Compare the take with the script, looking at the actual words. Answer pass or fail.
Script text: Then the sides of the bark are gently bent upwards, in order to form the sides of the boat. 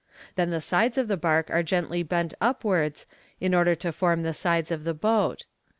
pass